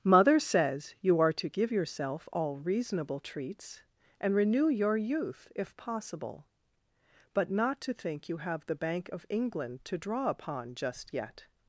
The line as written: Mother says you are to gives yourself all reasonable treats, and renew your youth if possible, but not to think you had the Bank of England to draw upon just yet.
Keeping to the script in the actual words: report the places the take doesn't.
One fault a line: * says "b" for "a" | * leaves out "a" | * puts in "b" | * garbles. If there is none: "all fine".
* says "give" for "gives"
* says "have" for "had"